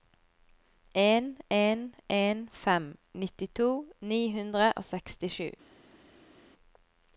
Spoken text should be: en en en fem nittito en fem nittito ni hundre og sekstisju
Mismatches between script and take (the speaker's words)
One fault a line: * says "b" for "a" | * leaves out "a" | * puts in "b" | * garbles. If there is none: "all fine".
* leaves out "en fem nittito"